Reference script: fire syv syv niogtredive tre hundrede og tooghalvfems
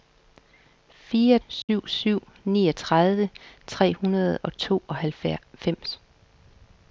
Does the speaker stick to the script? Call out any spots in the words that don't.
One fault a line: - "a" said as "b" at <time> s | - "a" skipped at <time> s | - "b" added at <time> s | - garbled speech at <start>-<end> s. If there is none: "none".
none